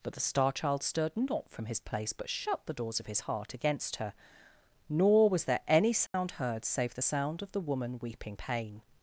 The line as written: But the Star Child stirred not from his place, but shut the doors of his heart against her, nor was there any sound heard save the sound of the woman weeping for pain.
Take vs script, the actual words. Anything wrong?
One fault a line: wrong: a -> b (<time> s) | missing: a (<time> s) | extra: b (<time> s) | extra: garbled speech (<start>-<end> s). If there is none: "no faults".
missing: for (8.4 s)